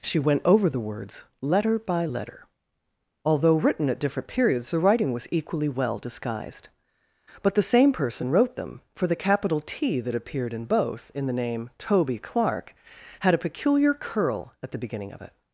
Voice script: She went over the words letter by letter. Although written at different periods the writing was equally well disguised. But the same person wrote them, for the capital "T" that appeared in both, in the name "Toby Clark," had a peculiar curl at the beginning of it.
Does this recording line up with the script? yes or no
yes